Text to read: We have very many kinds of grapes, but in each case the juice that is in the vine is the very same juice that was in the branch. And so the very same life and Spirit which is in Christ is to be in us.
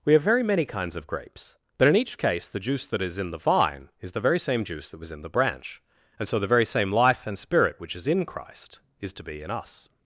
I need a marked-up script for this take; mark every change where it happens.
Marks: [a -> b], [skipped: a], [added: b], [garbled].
We have very many kinds of grapes, but in each case the juice that is in the vine is the very same juice that was in the branch. And so the very same life and Spirit which is in Christ is to be in us.